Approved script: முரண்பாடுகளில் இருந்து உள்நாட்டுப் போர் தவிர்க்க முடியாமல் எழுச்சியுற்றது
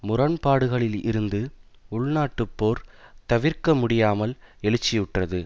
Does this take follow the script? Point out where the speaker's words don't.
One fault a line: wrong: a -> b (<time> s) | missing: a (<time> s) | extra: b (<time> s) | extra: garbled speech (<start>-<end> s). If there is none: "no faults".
no faults